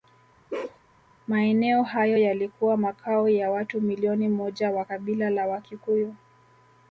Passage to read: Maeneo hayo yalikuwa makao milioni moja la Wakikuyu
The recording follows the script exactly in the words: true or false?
false